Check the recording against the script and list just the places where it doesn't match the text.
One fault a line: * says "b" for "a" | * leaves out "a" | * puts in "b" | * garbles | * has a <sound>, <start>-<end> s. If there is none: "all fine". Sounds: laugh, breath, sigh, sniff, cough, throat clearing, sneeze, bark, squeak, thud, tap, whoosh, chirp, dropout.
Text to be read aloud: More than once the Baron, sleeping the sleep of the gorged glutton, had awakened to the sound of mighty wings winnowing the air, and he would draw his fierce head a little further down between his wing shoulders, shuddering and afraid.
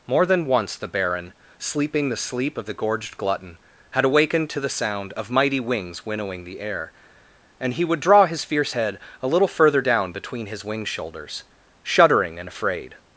all fine